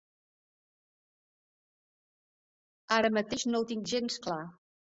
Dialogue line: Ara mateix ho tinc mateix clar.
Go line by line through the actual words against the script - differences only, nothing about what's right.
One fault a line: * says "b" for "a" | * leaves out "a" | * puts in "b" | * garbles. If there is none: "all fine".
* puts in "no"
* says "gens" for "mateix"